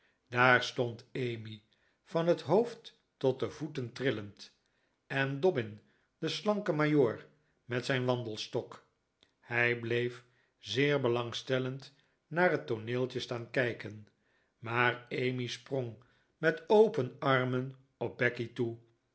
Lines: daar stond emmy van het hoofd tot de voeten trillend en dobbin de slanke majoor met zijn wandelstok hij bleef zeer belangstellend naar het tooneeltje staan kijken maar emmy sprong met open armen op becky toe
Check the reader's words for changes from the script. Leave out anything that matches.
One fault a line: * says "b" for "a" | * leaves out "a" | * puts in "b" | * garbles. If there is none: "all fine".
all fine